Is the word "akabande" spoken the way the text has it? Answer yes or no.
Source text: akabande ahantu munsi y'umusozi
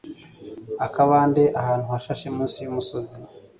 yes